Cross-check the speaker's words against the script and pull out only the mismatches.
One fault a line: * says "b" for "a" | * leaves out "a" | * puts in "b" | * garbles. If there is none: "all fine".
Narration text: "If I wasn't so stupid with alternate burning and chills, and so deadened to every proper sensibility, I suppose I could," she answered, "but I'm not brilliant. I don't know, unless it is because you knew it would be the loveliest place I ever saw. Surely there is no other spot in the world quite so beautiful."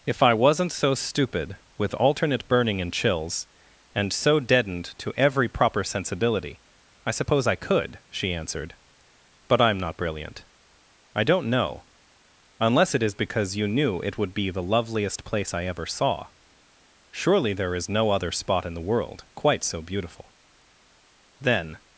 * puts in "Then"